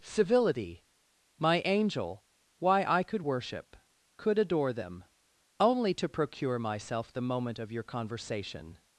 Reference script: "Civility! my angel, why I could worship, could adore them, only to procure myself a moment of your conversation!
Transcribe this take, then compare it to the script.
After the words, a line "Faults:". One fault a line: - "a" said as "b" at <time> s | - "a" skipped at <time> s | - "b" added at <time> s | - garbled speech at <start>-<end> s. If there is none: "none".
"Civility! my angel, why I could worship, could adore them, only to procure myself the moment of your conversation!
Faults:
- "a" said as "the" at 7.1 s